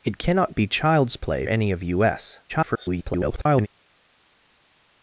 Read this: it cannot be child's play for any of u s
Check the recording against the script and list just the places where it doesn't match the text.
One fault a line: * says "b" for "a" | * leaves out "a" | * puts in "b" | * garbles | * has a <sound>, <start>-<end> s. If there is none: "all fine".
* leaves out "for"
* garbles